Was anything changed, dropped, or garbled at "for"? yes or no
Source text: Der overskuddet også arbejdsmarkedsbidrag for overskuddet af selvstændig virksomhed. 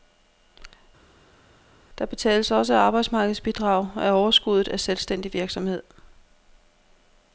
yes